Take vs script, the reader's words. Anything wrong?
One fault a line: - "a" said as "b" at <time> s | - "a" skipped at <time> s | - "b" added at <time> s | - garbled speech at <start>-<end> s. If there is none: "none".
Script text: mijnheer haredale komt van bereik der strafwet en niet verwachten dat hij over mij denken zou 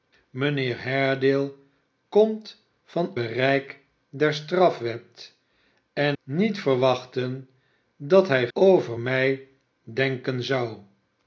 none